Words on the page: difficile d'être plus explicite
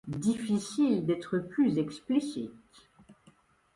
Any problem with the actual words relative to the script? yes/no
no